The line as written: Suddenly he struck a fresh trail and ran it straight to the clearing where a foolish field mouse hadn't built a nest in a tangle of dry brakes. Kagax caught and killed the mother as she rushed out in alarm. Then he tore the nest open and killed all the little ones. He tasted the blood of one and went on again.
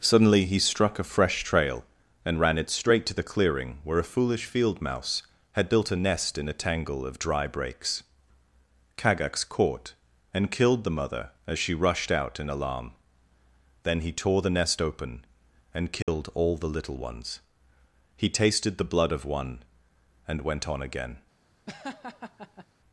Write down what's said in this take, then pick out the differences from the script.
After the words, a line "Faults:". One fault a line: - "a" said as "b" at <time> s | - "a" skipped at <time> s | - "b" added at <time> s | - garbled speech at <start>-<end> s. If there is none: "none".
Suddenly he struck a fresh trail and ran it straight to the clearing where a foolish field mouse had built a nest in a tangle of dry brakes. Kagax caught and killed the mother as she rushed out in alarm. Then he tore the nest open and killed all the little ones. He tasted the blood of one and went on again.
Faults:
- "hadn't" said as "had" at 5.5 s